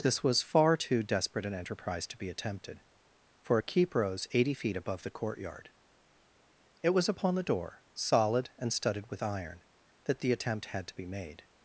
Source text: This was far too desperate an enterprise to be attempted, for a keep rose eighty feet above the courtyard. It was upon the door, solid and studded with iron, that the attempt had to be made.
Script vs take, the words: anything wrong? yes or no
no